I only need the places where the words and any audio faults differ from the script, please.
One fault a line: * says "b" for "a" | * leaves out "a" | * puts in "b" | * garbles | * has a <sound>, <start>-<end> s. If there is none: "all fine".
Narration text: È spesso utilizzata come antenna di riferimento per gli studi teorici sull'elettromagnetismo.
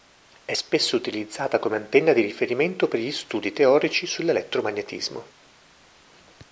all fine